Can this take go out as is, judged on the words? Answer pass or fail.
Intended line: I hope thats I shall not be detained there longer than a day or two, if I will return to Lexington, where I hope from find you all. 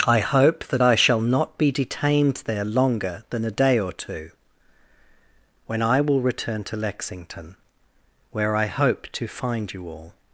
fail